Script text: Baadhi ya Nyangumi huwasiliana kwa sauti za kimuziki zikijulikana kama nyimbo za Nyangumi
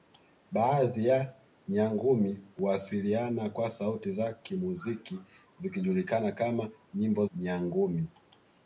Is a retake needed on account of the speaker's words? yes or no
yes